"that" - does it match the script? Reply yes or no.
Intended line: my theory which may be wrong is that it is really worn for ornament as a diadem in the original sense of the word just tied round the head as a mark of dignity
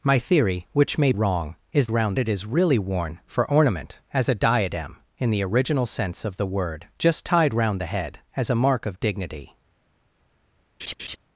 no